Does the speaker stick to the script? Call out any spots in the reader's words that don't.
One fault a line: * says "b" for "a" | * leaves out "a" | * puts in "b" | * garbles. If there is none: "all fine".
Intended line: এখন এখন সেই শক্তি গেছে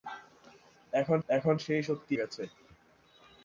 all fine